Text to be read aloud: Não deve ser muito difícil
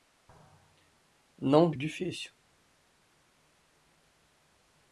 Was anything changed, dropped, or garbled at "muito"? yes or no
yes